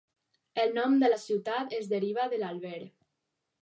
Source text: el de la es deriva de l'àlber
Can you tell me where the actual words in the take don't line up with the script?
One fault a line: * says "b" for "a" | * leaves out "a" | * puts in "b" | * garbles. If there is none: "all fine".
* puts in "nom"
* puts in "ciutat"